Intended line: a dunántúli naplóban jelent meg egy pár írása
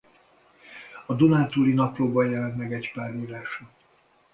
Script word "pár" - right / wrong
right